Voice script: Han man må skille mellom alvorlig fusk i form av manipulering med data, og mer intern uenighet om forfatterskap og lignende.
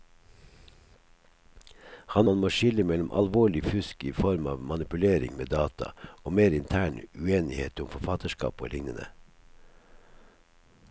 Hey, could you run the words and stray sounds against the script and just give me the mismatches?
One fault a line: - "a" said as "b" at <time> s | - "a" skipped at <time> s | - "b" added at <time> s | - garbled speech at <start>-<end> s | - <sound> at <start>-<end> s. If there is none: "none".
none